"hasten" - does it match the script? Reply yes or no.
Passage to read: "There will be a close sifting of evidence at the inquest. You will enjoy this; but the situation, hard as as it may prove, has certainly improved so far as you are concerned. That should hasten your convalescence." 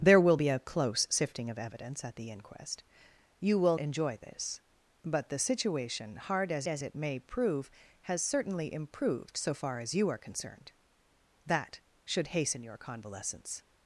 yes